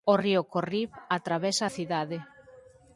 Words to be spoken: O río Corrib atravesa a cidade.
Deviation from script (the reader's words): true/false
false